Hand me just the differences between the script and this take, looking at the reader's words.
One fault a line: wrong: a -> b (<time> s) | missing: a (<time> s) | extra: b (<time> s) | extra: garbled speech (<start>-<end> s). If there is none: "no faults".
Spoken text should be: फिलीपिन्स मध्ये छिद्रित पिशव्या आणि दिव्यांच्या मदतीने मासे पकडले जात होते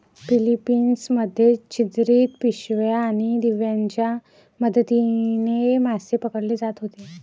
no faults